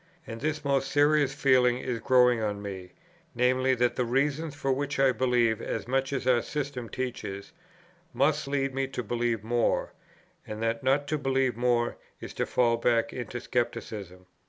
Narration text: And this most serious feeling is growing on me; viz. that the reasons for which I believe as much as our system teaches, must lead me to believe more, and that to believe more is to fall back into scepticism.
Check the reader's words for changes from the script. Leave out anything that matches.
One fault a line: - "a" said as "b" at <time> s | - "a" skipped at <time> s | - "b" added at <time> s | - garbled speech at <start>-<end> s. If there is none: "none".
- "not" added at 10.8 s